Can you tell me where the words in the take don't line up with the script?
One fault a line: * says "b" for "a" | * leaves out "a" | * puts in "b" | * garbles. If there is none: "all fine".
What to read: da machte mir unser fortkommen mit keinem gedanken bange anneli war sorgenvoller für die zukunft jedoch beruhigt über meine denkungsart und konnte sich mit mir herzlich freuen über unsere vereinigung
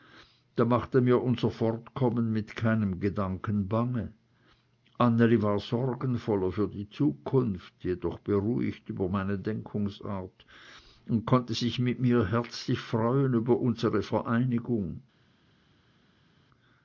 all fine